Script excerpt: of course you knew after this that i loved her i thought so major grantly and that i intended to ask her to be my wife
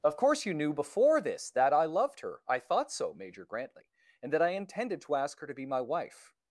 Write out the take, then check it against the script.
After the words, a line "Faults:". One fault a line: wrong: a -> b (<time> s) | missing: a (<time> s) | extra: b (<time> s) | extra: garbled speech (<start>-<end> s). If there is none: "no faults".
of course you knew before this that i loved her i thought so major grantly and that i intended to ask her to be my wife
Faults:
wrong: after -> before (0.7 s)